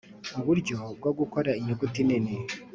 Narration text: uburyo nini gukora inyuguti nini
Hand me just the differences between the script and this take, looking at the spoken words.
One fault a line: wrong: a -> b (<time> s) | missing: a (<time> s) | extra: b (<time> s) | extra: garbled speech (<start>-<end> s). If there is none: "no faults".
wrong: nini -> bwo (1.0 s)